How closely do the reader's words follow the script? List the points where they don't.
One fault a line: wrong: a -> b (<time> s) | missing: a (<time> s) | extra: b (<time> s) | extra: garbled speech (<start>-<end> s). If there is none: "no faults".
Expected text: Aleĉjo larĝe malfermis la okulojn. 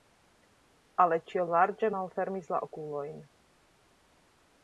no faults